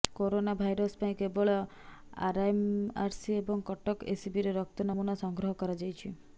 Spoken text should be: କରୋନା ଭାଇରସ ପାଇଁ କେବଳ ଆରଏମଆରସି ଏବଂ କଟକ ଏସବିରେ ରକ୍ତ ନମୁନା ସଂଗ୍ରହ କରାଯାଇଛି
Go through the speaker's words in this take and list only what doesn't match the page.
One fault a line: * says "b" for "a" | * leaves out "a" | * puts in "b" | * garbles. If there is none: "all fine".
all fine